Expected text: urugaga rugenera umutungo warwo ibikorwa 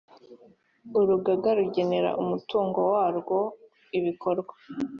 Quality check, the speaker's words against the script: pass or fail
pass